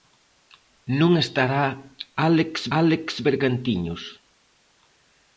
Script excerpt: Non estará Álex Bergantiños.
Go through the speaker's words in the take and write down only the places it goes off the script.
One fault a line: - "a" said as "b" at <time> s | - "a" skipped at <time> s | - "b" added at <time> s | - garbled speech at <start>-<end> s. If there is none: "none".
- "Álex" added at 2.8 s